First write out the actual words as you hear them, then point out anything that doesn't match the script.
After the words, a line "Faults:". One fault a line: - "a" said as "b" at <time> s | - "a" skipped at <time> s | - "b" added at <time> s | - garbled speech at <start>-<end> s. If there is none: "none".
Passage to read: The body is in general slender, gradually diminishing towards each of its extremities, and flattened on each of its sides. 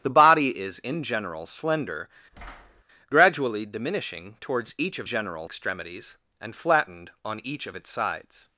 The body is in general slender, gradually diminishing towards each of general extremities, and flattened on each of its sides.
Faults:
- "its" said as "general" at 5.1 s